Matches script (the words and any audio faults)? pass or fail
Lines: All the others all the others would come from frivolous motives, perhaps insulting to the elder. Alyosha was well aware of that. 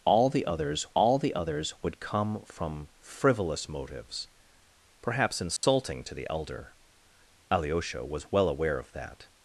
fail